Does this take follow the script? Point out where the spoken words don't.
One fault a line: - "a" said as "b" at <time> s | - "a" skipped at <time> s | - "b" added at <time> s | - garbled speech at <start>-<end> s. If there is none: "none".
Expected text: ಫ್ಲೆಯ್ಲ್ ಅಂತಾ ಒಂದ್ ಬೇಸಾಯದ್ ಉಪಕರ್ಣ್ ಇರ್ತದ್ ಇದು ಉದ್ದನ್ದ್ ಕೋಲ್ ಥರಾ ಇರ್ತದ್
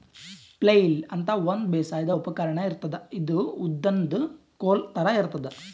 none